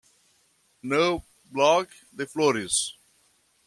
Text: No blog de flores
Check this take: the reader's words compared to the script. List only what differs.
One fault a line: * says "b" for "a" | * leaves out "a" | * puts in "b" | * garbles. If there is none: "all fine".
all fine